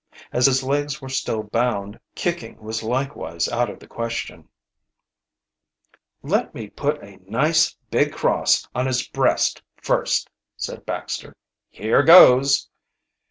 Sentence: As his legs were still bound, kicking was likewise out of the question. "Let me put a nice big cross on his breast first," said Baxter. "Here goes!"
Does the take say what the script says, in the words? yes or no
yes